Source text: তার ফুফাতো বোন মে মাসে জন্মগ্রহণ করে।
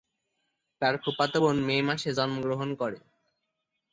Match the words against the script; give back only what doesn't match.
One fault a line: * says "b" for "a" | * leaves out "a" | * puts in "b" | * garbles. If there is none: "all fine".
all fine